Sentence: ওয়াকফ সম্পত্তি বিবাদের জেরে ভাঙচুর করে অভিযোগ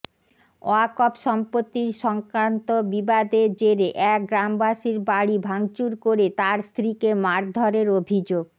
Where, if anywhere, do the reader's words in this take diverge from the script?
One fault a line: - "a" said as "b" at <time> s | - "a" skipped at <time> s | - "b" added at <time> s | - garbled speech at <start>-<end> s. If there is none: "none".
- "সংক্রান্ত" added at 2.0 s
- "এক গ্রামবাসীর বাড়ি" added at 4.1 s
- "তাঁর স্ত্রীকে মারধরের" added at 6.4 s